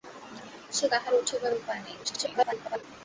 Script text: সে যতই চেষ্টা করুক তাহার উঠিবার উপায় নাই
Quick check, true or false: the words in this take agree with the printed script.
false